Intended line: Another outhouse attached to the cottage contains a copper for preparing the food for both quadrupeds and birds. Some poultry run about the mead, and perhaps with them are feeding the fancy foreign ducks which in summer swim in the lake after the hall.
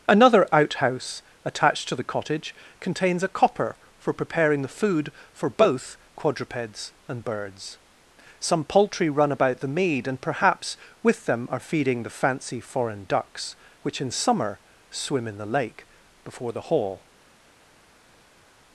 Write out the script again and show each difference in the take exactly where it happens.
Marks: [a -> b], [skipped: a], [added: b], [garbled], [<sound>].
Another outhouse attached to the cottage contains a copper for preparing the food for both quadrupeds and birds. Some poultry run about the mead, and perhaps with them are feeding the fancy foreign ducks which in summer swim in the lake [after -> before] the hall.